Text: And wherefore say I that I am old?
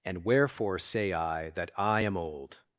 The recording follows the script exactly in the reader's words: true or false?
true